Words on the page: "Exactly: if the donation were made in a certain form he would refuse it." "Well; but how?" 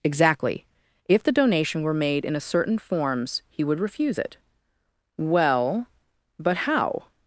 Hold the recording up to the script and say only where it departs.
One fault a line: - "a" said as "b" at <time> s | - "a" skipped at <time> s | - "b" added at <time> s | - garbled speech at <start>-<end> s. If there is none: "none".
- "form" said as "forms" at 2.8 s